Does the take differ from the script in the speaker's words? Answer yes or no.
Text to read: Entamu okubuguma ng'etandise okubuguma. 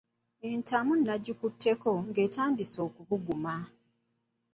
yes